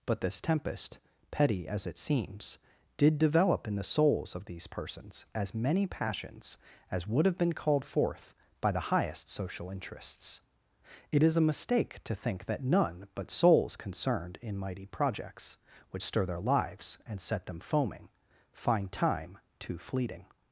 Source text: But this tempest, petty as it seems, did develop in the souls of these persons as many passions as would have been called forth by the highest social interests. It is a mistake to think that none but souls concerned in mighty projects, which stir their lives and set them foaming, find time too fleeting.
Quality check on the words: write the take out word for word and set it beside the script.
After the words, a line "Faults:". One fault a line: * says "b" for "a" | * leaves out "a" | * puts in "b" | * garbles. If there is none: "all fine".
But this tempest, petty as it seems, did develop in the souls of these persons as many passions as would have been called forth by the highest social interests. It is a mistake to think that none but souls concerned in mighty projects, which stir their lives and set them foaming, find time too fleeting.
Faults:
all fine